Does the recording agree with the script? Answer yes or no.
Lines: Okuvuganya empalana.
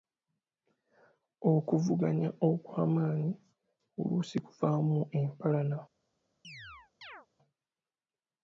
no